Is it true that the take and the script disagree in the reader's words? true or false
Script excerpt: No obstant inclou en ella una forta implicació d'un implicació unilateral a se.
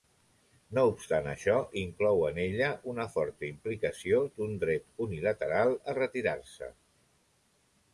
true